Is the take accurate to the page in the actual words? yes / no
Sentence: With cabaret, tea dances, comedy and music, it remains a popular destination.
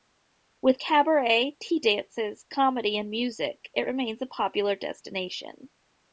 yes